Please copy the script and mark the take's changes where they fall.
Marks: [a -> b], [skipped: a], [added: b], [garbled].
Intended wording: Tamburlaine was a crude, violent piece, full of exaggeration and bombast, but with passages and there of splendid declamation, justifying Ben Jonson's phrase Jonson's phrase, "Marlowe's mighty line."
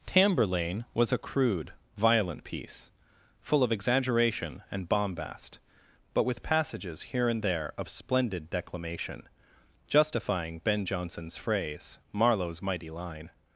Tamburlaine was a crude, violent piece, full of exaggeration and bombast, but with passages [added: here] and there of splendid declamation, justifying Ben Jonson's phrase [skipped: Jonson's phrase,] "Marlowe's mighty line."